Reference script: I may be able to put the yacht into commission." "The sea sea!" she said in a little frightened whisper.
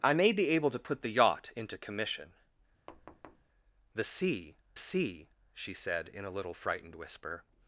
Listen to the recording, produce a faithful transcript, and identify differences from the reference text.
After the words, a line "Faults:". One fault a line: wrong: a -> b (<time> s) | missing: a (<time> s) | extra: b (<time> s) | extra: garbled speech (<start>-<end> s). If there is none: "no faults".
I may be able to put the yacht into commission." "The sea sea!" she said in a little frightened whisper.
Faults:
no faults